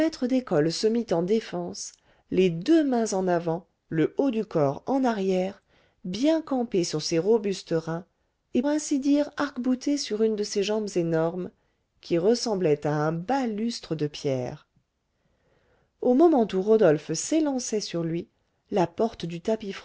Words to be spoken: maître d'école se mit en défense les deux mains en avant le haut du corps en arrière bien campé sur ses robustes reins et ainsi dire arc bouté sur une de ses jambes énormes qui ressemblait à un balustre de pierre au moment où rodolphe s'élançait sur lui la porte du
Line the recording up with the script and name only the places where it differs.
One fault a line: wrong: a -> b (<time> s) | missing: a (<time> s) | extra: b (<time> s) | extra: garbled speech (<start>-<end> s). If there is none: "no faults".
no faults